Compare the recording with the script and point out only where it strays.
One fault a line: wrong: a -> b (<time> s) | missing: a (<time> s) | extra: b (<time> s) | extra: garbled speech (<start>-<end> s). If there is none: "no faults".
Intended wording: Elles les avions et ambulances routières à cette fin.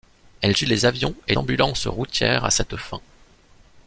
no faults